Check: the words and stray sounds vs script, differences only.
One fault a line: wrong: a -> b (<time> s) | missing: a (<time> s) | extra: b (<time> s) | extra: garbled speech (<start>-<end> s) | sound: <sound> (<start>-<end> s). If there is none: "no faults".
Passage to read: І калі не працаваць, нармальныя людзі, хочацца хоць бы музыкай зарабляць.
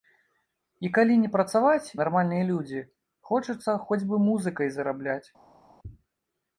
no faults